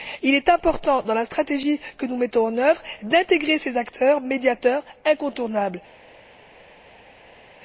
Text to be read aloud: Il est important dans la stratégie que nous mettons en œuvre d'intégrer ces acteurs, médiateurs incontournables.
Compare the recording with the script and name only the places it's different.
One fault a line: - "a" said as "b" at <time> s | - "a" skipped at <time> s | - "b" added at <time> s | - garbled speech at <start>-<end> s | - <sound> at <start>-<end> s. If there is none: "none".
none